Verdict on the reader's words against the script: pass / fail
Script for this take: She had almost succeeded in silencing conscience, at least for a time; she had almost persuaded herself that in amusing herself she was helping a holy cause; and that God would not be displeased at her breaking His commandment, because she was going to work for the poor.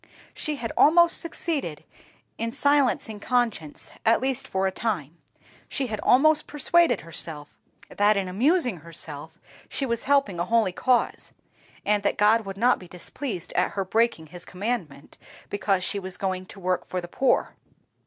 pass